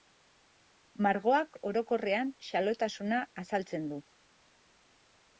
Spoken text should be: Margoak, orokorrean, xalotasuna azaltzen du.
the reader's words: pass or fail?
pass